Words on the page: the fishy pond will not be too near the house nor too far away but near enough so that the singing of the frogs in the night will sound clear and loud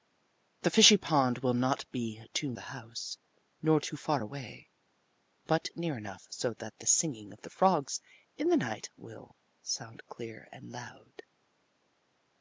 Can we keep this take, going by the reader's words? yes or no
no